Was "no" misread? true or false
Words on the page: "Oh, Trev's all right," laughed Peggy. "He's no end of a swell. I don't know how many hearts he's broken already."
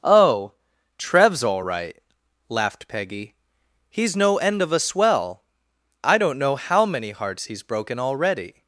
false